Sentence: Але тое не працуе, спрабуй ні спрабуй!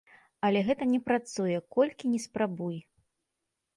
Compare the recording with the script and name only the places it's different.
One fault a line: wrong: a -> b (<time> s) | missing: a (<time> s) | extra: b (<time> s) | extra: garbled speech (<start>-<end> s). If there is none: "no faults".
wrong: тое -> гэта (0.7 s)
wrong: спрабуй -> колькі (1.8 s)